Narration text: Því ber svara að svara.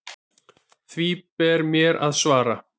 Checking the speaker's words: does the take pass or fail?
fail